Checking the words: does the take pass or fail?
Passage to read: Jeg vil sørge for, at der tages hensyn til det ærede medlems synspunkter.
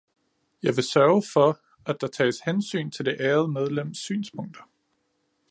pass